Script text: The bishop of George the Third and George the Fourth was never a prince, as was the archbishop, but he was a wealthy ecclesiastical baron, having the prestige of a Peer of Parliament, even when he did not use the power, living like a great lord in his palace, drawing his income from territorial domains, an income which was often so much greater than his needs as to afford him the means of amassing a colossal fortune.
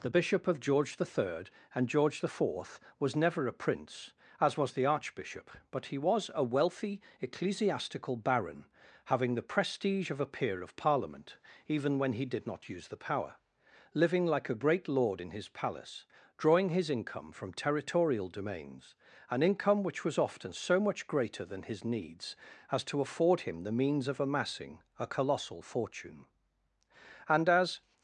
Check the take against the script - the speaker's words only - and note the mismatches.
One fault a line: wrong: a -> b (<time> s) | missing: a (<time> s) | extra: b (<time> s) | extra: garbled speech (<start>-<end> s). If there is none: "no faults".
extra: And as (27.3 s)